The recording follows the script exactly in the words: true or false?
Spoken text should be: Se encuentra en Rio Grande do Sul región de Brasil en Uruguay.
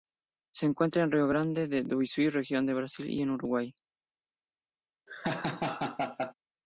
false